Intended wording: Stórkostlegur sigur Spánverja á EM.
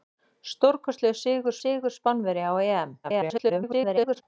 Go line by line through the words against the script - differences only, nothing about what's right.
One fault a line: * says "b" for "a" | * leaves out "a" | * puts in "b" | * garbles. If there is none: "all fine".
* puts in "sigur"
* garbles